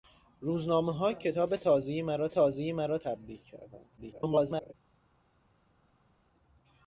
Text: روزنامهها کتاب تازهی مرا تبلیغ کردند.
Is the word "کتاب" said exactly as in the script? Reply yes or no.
yes